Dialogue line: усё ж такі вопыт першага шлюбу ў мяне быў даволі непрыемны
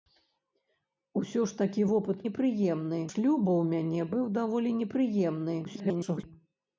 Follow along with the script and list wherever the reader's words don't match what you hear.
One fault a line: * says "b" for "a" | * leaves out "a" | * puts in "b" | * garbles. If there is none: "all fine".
* says "непрыемны" for "першага"
* garbles